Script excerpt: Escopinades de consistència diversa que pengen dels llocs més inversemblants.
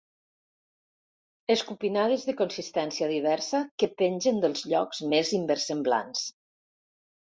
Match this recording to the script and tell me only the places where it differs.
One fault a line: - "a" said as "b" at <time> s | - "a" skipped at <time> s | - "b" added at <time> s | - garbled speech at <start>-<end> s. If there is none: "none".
none